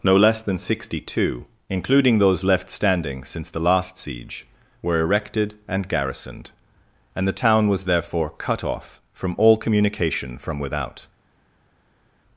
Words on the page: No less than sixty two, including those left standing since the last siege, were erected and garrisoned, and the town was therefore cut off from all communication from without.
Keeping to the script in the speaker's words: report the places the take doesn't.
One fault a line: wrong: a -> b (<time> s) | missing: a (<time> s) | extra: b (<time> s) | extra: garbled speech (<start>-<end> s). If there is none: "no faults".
no faults